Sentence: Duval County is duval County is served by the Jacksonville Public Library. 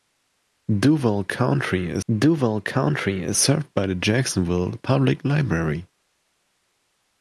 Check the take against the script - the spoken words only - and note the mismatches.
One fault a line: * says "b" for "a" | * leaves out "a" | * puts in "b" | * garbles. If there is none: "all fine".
all fine